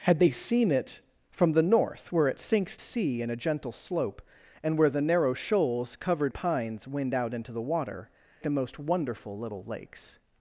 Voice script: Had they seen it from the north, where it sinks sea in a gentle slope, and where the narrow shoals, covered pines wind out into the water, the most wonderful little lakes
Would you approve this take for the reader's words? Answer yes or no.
yes